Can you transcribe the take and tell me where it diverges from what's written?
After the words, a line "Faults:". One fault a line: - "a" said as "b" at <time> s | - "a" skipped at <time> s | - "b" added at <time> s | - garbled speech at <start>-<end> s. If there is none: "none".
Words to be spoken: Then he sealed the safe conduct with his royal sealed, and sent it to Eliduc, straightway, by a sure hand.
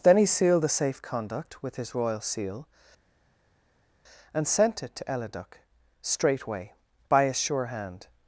Then he sealed the safe conduct with his royal seal, and sent it to Eliduc, straightway, by a sure hand.
Faults:
- "sealed" said as "seal" at 2.2 s